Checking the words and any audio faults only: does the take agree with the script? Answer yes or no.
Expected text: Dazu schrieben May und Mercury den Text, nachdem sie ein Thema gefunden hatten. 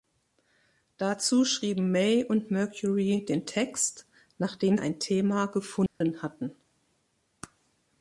no